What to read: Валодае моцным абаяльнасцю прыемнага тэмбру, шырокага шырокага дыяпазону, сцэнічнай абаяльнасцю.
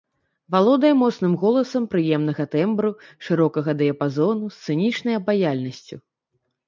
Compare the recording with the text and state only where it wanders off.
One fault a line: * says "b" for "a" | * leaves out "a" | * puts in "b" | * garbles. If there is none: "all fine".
* says "голасам" for "абаяльнасцю"
* leaves out "шырокага"